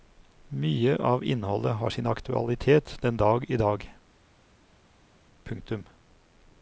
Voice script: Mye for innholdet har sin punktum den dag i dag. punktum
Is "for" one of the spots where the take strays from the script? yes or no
yes